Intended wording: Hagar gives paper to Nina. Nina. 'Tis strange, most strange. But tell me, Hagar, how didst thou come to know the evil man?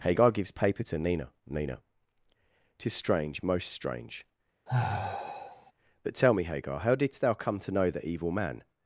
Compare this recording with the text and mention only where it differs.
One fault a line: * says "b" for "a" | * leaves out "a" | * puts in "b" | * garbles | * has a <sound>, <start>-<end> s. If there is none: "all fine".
* has a sigh, 4.7-5.7 s